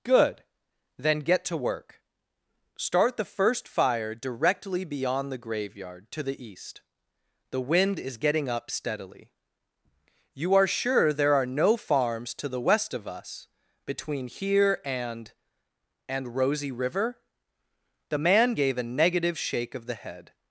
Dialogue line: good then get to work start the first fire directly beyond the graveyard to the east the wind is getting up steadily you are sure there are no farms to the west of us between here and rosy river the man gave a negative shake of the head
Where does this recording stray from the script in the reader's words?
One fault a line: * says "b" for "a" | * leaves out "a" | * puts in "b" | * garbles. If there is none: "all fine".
* puts in "and"